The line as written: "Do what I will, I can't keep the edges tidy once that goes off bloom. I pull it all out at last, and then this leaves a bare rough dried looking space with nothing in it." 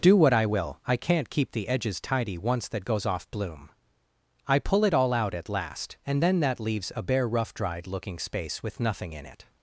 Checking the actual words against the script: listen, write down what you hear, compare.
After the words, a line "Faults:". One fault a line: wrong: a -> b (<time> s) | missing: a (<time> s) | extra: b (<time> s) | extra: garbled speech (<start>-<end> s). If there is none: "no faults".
"Do what I will, I can't keep the edges tidy once that goes off bloom. I pull it all out at last, and then that leaves a bare rough dried looking space with nothing in it."
Faults:
wrong: this -> that (6.4 s)